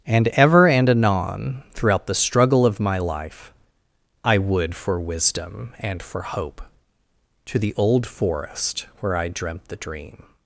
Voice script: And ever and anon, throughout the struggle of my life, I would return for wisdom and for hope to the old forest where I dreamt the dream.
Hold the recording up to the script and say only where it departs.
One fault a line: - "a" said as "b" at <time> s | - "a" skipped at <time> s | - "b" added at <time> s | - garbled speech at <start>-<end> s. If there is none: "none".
- "return" skipped at 4.8 s